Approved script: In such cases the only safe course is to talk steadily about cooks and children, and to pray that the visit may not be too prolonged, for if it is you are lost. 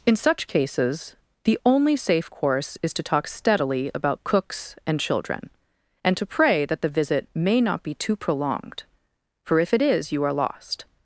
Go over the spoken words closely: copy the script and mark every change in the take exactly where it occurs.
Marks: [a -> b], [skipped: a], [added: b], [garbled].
In such cases the only safe course is to talk steadily about cooks and children, and to pray that the visit may not be too prolonged, for if it is you are lost.